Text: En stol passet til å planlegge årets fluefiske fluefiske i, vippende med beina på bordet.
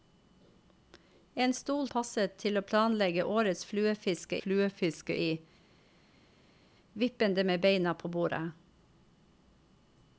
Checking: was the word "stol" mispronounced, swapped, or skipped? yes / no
no